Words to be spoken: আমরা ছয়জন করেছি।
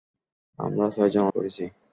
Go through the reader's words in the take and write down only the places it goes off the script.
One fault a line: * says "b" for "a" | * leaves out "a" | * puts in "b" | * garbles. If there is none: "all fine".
all fine